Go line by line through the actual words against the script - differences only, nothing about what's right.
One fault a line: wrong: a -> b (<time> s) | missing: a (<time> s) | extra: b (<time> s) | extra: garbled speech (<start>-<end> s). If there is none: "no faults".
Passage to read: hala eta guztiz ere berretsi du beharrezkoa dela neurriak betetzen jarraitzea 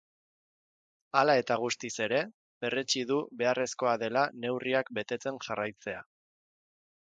no faults